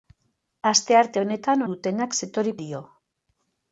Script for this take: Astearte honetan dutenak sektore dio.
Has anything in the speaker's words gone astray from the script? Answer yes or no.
no